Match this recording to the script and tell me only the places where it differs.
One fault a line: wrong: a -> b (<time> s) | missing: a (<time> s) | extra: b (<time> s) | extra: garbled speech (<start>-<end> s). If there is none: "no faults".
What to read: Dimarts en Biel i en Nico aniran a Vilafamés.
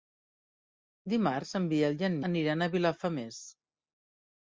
missing: Nico (2.2 s)